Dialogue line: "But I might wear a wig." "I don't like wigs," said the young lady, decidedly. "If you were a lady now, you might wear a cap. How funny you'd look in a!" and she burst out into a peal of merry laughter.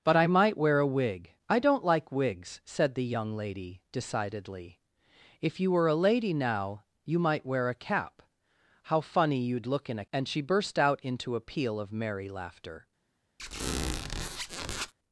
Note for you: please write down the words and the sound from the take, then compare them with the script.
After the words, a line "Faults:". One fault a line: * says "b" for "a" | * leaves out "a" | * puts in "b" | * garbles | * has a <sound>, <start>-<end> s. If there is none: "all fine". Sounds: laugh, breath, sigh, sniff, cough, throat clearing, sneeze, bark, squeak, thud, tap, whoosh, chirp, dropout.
"But I might wear a wig." "I don't like wigs," said the young lady, decidedly. "If you were a lady now, you might wear a cap. How funny you'd look in a!" and she burst out into a peal of merry laughter.
Faults:
* has a squeak, 13.4-14.9 s